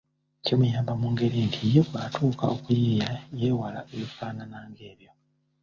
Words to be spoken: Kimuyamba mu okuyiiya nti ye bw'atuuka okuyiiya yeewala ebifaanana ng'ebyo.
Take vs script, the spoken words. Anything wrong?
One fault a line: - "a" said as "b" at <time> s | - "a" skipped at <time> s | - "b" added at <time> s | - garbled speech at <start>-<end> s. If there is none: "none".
- "okuyiiya" said as "ngeri" at 1.1 s